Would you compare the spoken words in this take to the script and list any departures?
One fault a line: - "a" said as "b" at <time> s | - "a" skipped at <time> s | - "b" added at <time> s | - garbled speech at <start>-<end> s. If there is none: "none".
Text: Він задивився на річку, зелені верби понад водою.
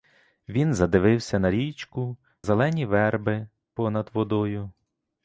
none